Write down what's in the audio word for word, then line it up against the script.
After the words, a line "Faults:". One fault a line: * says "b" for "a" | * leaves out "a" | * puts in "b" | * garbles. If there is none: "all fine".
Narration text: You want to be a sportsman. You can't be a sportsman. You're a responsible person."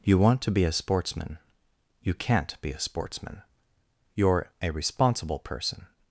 You want to be a sportsman. You can't be a sportsman. You're a responsible person."
Faults:
all fine